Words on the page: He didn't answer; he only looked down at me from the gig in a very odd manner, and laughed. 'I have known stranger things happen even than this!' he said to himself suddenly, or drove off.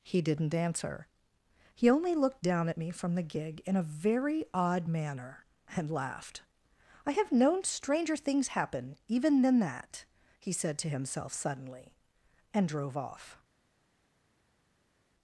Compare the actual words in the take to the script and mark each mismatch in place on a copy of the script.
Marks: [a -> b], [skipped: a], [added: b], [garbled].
He didn't answer; he only looked down at me from the gig in a very odd manner, and laughed. 'I have known stranger things happen even than [this!' -> that] he said to himself suddenly, [or -> and] drove off.